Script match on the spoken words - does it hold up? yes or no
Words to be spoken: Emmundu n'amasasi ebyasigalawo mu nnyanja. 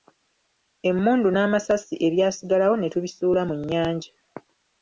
no